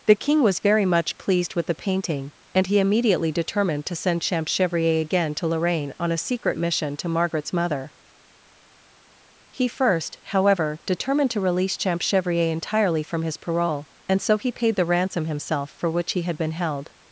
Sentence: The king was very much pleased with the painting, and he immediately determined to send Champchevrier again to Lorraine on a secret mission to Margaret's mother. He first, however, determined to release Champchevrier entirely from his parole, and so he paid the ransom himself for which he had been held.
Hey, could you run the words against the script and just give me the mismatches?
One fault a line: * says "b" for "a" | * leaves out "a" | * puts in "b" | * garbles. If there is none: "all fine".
all fine